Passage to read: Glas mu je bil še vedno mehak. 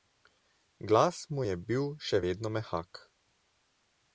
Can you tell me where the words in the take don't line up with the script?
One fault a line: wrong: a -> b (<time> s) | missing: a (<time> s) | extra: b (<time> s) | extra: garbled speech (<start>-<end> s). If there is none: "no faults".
no faults